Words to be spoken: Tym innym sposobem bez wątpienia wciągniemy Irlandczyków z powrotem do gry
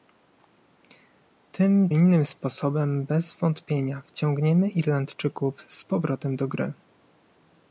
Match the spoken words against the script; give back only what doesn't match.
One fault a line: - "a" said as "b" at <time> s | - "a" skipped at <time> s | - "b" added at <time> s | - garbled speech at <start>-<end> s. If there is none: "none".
none